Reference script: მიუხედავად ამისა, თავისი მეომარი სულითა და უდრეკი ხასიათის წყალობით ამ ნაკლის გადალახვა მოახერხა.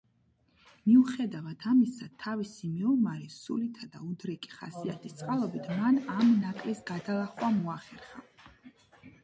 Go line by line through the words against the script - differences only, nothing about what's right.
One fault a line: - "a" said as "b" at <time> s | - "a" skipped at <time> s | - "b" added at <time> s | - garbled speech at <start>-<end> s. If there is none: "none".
- "მან" added at 5.8 s